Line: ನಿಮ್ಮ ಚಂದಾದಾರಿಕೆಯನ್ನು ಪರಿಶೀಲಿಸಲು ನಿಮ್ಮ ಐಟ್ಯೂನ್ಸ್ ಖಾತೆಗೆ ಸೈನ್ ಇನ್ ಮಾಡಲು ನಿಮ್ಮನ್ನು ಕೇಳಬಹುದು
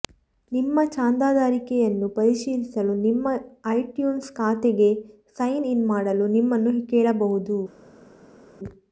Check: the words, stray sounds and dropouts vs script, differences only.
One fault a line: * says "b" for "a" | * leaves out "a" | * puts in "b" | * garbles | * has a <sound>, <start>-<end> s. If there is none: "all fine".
all fine